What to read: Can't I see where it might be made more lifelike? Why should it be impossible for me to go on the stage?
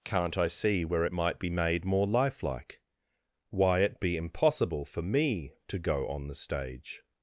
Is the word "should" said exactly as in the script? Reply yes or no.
no